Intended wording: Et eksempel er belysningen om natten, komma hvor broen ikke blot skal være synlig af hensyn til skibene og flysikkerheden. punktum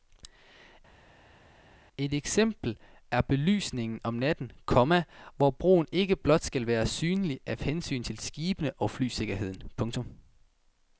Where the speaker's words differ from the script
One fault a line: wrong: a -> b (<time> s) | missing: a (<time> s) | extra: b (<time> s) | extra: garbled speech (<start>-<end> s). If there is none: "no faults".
no faults